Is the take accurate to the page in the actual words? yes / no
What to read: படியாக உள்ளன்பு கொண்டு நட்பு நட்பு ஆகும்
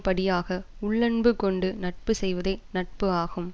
no